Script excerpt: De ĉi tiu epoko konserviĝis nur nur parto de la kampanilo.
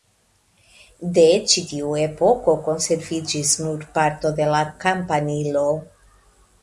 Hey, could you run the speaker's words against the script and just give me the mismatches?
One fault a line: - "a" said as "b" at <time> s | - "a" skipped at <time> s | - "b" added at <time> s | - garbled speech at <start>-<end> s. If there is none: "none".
- "nur" skipped at 3.8 s